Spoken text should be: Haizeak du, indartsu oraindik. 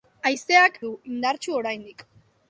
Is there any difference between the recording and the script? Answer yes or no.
no